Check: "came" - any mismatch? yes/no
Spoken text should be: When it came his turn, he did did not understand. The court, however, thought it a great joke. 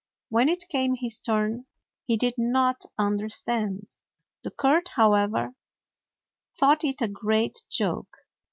no